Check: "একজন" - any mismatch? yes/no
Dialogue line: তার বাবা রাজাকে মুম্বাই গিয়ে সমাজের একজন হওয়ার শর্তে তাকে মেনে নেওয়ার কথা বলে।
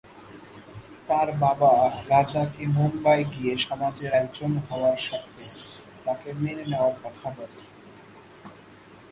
no